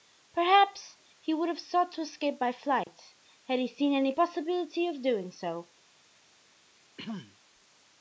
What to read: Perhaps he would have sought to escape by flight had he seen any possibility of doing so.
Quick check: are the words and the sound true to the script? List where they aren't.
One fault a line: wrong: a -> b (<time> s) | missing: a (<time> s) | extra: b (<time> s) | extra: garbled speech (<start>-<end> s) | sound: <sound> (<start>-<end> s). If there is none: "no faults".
sound: dropout (2.8-2.9 s)
sound: throat clearing (7.0-7.4 s)